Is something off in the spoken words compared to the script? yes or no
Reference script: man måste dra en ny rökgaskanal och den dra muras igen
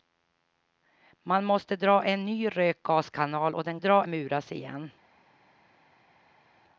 no